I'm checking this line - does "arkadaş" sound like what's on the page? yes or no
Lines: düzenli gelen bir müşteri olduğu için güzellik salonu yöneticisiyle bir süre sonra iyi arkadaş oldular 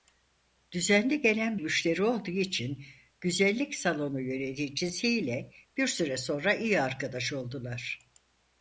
yes